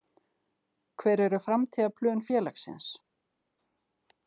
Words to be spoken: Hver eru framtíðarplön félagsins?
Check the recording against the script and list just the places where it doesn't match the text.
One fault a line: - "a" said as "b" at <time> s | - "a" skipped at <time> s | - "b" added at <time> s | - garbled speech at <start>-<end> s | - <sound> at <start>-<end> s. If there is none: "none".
none